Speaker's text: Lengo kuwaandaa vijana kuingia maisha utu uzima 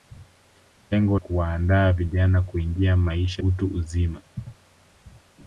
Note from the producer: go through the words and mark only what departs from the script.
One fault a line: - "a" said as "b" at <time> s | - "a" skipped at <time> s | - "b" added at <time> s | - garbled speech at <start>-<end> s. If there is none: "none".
none